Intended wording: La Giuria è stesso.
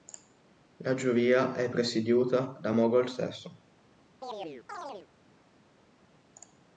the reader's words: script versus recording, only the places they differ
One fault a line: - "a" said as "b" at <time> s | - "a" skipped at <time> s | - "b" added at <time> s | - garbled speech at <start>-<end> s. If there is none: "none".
- "presieduta da Mogol" added at 1.7 s